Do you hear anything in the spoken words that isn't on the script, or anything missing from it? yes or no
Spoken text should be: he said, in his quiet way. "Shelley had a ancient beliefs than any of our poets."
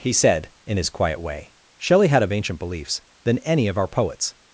no